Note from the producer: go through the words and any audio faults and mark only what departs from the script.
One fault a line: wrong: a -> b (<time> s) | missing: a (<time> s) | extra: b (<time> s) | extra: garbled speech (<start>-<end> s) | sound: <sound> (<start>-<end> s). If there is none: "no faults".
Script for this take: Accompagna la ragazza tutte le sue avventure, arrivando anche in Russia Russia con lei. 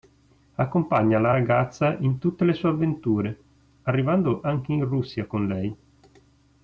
extra: in (2.0 s)
missing: Russia (5.2 s)